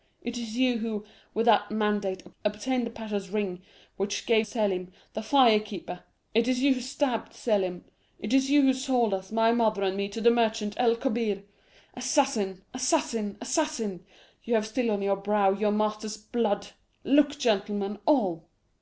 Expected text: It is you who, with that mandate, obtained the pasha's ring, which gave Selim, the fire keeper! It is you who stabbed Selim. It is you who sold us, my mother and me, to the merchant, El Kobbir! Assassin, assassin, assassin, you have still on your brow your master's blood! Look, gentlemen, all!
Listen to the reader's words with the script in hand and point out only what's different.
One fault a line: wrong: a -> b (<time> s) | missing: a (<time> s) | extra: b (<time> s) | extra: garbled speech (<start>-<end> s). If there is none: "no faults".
no faults